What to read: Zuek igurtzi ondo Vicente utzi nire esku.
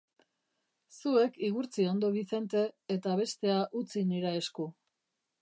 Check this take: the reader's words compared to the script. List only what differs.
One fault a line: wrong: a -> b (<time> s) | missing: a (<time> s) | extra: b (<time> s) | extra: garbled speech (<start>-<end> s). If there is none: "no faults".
extra: eta bestea (3.0 s)